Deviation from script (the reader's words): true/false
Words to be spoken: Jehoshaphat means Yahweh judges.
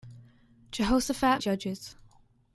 true